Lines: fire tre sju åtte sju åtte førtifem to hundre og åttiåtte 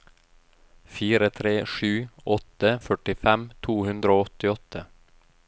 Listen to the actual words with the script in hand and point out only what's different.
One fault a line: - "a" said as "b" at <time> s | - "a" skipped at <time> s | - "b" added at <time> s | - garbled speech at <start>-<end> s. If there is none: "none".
- "sju åtte" skipped at 2.7 s